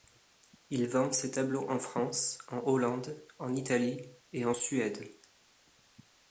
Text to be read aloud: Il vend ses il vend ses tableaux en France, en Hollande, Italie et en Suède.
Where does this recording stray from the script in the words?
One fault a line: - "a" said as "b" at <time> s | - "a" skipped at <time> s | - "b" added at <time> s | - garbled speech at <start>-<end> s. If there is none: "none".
- "il vend ses" skipped at 1.3 s
- "en" added at 3.4 s